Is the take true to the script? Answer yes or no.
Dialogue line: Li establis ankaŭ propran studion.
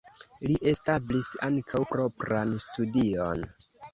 yes